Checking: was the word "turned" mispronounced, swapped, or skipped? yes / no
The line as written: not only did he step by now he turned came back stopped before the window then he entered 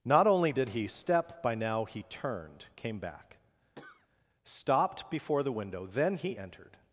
no